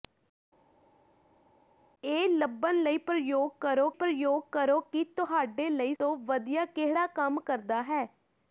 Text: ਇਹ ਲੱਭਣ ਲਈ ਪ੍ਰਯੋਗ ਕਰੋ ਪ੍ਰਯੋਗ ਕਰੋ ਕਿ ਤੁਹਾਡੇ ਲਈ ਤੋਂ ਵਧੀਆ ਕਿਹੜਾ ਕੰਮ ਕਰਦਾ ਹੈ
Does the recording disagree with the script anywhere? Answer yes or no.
no